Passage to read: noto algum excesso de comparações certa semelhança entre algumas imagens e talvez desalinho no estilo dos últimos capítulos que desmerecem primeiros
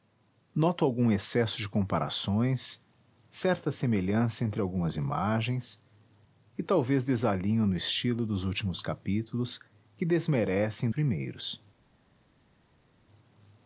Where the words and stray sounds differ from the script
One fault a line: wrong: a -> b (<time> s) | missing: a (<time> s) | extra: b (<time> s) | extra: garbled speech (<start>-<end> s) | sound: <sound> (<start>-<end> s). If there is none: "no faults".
no faults